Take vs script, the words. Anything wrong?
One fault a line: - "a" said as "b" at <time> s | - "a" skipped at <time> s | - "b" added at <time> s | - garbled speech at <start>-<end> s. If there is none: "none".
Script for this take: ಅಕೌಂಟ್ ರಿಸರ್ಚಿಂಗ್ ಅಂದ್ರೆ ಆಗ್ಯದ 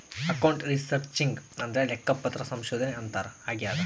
- "ಲೆಕ್ಕಪತ್ರ ಸಂಶೋಧನೆ ಅಂತಾರ" added at 1.9 s